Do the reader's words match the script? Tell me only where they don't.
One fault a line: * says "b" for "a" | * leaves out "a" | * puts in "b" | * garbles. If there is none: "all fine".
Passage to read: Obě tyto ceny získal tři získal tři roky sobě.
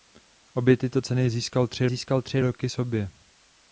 all fine